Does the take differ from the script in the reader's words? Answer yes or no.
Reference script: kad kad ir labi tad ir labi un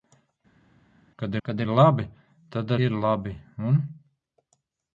no